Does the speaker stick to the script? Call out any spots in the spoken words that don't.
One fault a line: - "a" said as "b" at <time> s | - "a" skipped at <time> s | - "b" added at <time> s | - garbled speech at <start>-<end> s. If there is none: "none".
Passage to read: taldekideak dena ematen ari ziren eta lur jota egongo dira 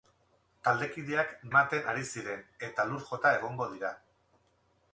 - "dena" skipped at 1.4 s